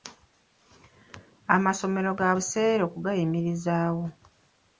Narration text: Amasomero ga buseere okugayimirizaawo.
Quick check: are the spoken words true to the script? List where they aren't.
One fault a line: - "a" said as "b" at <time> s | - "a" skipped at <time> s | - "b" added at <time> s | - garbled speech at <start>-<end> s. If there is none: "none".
none